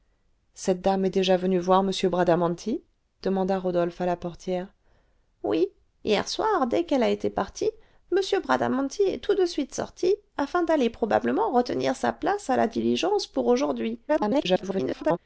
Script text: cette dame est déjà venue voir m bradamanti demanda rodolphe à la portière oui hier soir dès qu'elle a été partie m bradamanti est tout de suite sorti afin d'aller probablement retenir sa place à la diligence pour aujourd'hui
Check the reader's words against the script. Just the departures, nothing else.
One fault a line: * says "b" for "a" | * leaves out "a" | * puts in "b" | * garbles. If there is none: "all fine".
* garbles